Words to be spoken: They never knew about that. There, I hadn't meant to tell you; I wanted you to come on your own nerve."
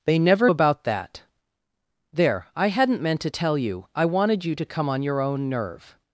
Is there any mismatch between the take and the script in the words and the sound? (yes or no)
yes